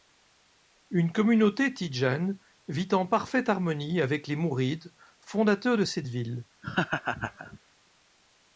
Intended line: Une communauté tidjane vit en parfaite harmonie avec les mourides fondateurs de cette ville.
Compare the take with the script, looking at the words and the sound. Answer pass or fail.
fail